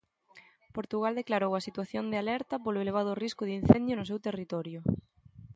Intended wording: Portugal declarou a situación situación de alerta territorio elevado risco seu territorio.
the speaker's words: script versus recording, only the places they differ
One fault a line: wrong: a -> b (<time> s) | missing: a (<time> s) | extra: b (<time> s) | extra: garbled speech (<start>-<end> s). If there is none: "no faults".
missing: situación (2.0 s)
wrong: territorio -> polo (2.6 s)
extra: de incendio no (3.5 s)